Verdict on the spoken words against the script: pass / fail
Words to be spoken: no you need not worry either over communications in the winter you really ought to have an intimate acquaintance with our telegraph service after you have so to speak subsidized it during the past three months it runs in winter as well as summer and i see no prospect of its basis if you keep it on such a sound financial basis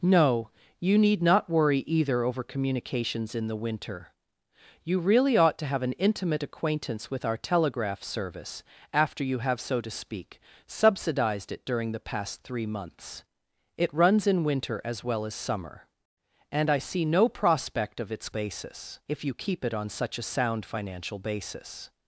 pass